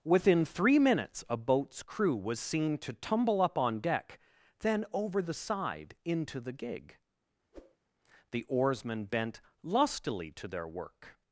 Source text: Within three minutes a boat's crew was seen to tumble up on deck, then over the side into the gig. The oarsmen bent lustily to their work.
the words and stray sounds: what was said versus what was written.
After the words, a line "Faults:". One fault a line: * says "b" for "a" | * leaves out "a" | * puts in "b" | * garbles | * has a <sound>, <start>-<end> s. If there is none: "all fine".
Within three minutes a boat's crew was seen to tumble up on deck, then over the side into the gig. The oarsmen bent lustily to their work.
Faults:
* has a whoosh, 7.5-7.8 s